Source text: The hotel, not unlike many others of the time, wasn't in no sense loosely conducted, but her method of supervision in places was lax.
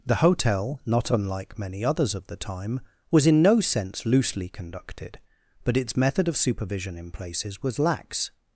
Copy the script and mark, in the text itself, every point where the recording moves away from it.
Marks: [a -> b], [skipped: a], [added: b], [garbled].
The hotel, not unlike many others of the time, [wasn't -> was] in no sense loosely conducted, but [her -> its] method of supervision in places was lax.